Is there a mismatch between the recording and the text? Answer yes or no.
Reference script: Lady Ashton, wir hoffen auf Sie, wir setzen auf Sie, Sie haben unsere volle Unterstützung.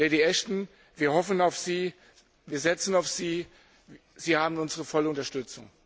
no